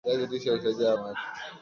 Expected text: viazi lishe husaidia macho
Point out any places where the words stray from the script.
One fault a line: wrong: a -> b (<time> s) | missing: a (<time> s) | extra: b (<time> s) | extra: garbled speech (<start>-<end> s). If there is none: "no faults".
no faults